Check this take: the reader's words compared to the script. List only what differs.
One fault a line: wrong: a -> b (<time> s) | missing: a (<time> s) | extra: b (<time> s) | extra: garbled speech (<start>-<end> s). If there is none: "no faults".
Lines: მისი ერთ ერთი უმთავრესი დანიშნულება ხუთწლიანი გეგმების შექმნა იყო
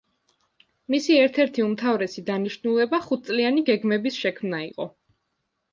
no faults